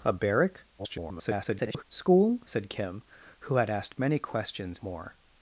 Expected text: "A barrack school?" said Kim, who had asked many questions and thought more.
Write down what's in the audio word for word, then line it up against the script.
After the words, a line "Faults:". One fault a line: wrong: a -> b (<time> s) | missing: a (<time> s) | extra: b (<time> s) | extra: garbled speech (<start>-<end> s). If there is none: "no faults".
"A barrack [garbled] school?" said Kim, who had asked many questions more.
Faults:
extra: garbled speech (0.8-1.8 s)
missing: and thought (4.8 s)